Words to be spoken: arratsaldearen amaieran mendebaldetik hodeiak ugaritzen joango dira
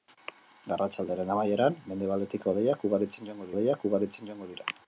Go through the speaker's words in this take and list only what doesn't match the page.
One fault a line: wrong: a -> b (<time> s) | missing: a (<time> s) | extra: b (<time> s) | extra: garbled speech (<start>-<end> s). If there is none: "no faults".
extra: hodeiak ugaritzen joango (3.5 s)